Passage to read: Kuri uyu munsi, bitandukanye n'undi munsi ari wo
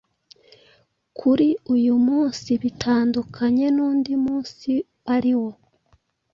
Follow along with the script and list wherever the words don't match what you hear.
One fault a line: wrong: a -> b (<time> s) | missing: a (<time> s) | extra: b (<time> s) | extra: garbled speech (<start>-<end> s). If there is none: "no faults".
no faults